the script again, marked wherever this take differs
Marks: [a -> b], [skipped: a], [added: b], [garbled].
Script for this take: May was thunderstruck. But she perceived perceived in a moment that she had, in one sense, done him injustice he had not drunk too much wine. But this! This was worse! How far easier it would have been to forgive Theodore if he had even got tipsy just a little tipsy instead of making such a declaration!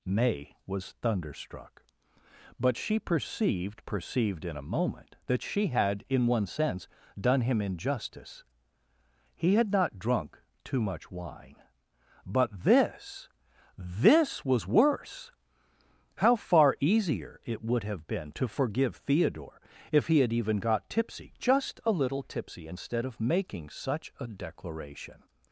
May was thunderstruck. But she perceived perceived in a moment that she had, in one sense, done him injustice he had not drunk too much wine. But this! This was worse! How far easier it would have been to forgive Theodore if he had even got tipsy just a little tipsy instead of making such a declaration!